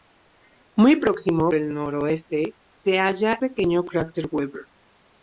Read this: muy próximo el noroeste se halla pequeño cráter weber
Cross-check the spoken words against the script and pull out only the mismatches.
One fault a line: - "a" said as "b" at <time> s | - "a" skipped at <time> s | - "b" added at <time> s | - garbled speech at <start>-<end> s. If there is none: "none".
none